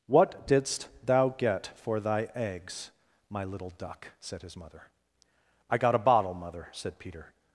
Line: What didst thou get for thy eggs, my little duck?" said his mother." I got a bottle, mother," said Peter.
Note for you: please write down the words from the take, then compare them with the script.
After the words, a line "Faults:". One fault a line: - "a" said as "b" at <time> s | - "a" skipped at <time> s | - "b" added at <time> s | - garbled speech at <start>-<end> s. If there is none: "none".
What didst thou get for thy eggs, my little duck?" said his mother." I got a bottle, mother," said Peter.
Faults:
none